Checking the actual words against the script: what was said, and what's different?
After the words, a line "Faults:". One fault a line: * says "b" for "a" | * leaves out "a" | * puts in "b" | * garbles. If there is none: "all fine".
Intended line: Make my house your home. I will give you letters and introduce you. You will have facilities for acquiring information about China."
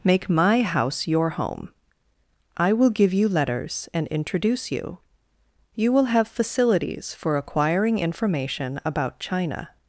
Make my house your home. I will give you letters and introduce you. You will have facilities for acquiring information about China."
Faults:
all fine